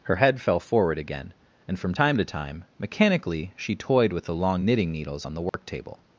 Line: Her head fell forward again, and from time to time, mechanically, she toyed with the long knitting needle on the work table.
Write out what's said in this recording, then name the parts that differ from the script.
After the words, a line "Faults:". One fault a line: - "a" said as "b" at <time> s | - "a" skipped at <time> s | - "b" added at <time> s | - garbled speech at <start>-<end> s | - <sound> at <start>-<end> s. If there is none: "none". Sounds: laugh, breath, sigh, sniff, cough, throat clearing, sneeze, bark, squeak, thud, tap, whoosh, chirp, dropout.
Her head fell forward again, and from time to time, mechanically, she toyed with the long knitting needles on the work table.
Faults:
- "needle" said as "needles" at 4.9 s
- dropout at 5.5-5.5 s